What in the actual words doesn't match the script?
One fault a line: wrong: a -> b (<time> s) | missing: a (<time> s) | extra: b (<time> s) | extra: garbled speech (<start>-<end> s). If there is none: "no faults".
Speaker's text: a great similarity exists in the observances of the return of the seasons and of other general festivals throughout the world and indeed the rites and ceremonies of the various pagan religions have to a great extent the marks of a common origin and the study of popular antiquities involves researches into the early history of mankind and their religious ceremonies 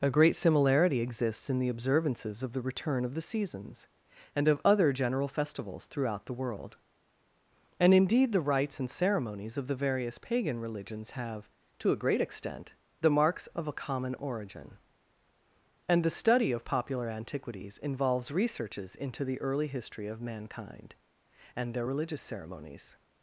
no faults